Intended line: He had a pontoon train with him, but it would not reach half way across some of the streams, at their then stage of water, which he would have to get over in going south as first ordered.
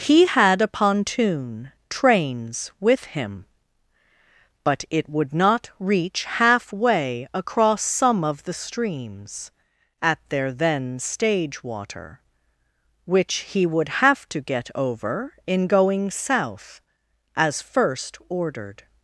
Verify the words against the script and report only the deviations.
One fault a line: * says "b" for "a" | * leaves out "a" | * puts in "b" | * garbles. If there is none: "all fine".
* says "trains" for "train"
* leaves out "of"